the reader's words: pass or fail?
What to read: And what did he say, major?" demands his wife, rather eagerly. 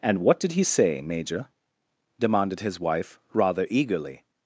fail